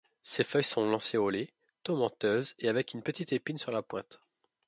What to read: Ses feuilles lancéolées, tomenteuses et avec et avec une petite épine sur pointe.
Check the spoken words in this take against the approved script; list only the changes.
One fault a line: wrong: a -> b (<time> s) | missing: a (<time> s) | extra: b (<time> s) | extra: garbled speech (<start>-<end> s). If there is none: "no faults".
extra: sont (0.6 s)
missing: et avec (3.0 s)
extra: la (3.7 s)